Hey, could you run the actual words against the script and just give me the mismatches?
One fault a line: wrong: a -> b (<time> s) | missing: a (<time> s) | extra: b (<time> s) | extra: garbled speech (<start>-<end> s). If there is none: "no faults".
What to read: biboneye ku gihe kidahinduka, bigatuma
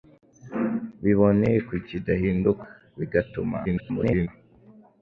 missing: gihe (1.8 s)
extra: garbled speech (3.6-4.3 s)